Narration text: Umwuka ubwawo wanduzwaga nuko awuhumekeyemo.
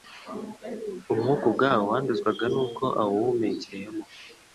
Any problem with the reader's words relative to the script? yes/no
no